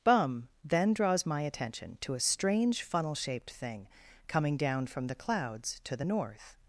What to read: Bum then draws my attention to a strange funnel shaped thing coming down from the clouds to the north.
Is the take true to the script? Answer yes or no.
yes